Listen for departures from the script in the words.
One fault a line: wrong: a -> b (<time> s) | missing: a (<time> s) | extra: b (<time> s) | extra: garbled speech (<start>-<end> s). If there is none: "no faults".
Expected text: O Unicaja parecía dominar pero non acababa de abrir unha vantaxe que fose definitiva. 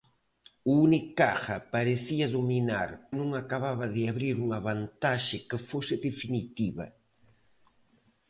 missing: pero (2.9 s)